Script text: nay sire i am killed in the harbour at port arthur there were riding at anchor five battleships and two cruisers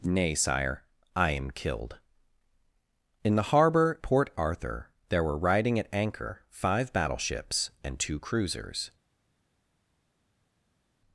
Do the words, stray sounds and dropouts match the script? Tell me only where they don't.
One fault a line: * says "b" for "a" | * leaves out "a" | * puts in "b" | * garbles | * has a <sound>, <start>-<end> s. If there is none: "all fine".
* leaves out "at"